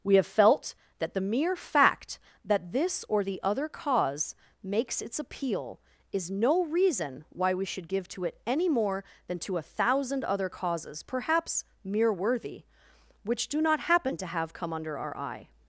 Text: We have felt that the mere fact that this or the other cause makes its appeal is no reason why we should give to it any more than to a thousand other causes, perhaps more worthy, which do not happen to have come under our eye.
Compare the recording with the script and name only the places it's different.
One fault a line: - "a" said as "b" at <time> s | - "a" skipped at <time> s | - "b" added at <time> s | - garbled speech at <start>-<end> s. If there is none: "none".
- "more" said as "mere" at 11.8 s